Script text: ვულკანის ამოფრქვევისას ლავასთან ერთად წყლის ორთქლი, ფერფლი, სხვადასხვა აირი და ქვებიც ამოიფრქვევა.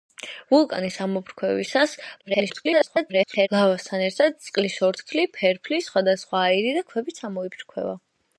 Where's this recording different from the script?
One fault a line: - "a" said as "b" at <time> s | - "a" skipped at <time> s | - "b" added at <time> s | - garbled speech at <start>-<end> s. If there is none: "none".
- garbled speech at 2.2-3.5 s